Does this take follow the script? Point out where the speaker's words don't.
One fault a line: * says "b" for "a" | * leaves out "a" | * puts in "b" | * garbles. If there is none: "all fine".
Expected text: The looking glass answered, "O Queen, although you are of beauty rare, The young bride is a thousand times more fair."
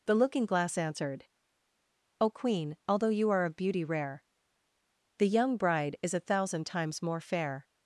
all fine